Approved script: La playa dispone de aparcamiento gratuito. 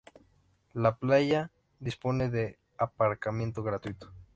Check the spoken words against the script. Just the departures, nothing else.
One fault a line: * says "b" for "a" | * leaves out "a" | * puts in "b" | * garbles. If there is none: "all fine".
all fine